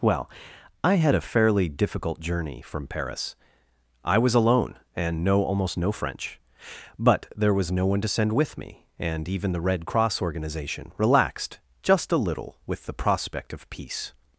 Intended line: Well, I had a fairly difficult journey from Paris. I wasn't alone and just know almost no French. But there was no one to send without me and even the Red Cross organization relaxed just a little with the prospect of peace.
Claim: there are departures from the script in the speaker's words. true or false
true